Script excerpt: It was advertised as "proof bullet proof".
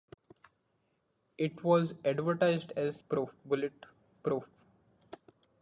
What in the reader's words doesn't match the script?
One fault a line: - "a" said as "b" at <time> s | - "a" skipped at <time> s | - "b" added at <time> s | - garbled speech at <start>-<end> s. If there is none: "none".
none